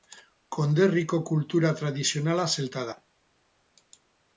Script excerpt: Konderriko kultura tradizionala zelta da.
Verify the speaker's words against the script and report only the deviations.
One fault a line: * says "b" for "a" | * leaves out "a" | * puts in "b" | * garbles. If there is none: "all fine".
all fine